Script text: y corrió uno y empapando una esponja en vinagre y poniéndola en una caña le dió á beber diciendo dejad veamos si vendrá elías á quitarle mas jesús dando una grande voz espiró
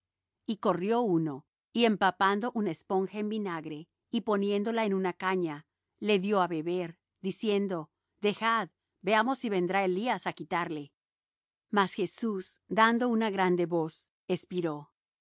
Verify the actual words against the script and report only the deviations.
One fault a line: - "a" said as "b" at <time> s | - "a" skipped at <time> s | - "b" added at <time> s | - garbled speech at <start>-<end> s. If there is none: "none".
none